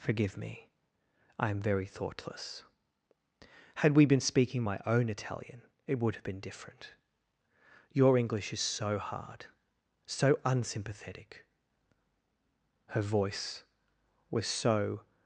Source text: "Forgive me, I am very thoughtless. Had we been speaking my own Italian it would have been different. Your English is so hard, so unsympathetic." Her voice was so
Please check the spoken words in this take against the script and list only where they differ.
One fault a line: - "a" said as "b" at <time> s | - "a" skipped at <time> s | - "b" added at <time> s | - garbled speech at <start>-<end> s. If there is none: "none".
none